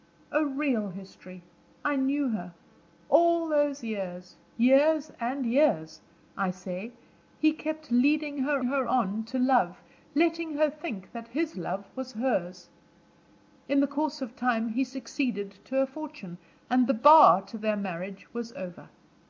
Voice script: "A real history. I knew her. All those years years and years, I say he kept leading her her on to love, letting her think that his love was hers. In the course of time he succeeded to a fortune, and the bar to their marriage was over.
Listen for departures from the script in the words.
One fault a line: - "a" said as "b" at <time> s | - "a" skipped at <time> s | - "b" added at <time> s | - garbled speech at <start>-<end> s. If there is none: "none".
none